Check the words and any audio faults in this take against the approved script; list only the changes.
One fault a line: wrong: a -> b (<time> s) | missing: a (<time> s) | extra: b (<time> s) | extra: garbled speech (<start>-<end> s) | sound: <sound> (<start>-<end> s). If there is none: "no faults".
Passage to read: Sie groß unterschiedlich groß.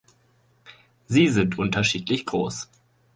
wrong: groß -> sind (1.3 s)